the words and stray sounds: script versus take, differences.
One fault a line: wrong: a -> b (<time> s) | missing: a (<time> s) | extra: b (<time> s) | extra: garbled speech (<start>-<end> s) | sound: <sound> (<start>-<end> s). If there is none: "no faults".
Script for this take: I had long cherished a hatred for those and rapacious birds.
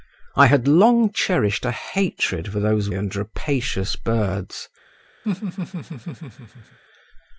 sound: laugh (5.2-6.8 s)